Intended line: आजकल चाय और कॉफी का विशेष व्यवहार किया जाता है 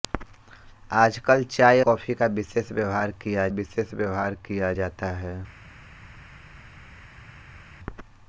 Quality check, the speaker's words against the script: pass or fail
fail